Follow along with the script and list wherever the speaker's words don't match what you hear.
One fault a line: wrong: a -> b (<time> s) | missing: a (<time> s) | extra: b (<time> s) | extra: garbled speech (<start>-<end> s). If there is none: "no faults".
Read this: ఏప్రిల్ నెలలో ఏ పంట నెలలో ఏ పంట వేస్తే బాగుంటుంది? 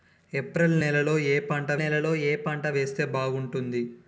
no faults